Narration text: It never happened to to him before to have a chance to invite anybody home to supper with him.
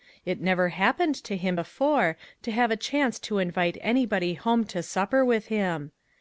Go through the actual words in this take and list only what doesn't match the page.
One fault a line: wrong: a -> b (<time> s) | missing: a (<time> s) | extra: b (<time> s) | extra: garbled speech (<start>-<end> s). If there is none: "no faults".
missing: to (1.4 s)